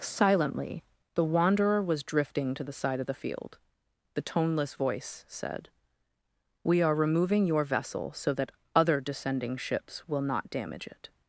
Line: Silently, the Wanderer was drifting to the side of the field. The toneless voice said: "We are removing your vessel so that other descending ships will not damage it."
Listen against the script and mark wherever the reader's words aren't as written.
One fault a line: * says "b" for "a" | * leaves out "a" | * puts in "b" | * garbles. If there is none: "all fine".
all fine